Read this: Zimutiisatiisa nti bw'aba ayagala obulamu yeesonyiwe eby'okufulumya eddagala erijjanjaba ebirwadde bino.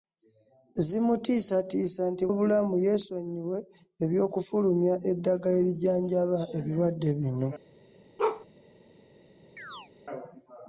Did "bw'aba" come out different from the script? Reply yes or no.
yes